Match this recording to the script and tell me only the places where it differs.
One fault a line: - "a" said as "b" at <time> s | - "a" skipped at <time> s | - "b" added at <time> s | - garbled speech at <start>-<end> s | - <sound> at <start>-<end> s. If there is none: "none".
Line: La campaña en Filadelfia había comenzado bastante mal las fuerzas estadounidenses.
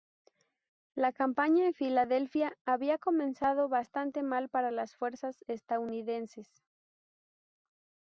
- "para" added at 4.5 s